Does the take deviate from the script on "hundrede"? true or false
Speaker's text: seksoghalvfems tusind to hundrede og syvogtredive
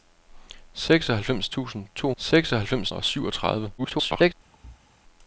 true